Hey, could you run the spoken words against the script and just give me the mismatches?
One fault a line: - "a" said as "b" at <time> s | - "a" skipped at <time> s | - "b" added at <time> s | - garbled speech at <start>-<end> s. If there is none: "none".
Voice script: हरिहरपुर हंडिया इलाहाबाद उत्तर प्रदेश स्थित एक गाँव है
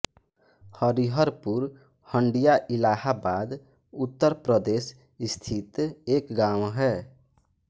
none